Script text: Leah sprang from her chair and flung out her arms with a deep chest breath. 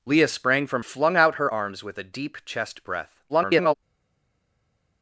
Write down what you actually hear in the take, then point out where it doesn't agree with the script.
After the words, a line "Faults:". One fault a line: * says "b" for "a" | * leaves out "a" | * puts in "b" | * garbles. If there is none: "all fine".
Leah sprang from flung out her arms with a deep chest breath. [garbled]
Faults:
* leaves out "her chair and"
* garbles